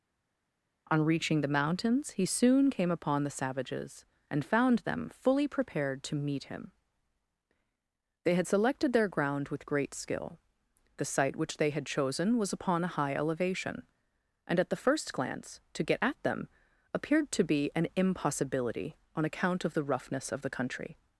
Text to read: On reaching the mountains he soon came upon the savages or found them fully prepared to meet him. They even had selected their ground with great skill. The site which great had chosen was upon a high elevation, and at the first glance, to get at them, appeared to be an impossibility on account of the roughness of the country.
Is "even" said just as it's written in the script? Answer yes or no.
no